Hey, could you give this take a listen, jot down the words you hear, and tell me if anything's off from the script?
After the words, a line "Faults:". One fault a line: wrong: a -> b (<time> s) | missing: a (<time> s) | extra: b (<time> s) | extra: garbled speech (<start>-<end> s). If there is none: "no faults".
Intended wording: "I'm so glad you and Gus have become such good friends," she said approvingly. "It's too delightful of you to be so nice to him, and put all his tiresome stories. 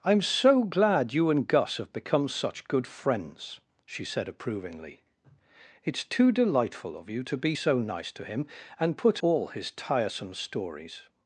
"I'm so glad you and Gus have become such good friends," she said approvingly. "It's too delightful of you to be so nice to him, and put all his tiresome stories.
Faults:
no faults